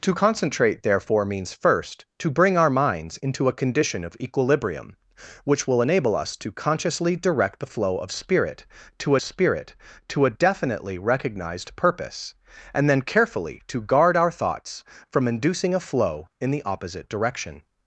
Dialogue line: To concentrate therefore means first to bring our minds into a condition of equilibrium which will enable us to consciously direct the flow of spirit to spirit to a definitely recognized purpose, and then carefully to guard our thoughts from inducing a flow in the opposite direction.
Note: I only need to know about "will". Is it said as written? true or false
true